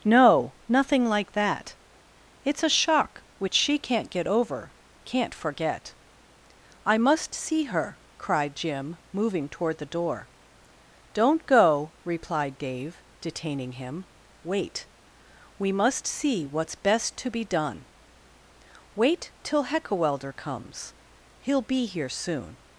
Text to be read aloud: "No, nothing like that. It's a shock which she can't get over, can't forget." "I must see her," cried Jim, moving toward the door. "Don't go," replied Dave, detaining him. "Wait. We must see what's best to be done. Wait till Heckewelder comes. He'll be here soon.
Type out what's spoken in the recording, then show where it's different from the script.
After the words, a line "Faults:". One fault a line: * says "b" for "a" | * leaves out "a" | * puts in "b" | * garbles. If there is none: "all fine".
"No, nothing like that. It's a shock which she can't get over, can't forget." "I must see her," cried Jim, moving toward the door. "Don't go," replied Dave, detaining him. "Wait. We must see what's best to be done. Wait till Heckewelder comes. He'll be here soon.
Faults:
all fine